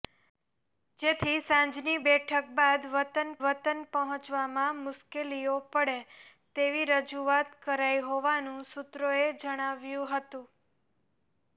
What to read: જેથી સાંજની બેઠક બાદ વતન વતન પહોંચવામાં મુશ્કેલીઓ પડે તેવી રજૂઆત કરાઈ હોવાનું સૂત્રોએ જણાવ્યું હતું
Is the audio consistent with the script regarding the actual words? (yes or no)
yes